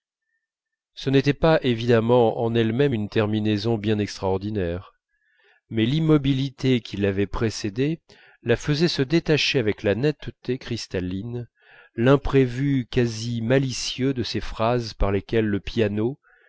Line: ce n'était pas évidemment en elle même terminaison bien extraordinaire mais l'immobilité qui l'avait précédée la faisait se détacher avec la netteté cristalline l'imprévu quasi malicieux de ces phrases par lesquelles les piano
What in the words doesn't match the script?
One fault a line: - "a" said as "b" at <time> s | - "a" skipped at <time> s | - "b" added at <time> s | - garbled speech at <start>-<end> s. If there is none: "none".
- "une" added at 2.9 s
- "les" said as "le" at 15.5 s